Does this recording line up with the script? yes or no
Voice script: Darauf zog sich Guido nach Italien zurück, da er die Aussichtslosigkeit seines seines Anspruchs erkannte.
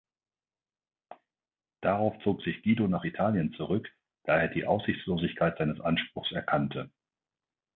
no